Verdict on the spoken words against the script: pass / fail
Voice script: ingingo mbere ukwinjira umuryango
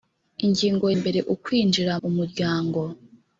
pass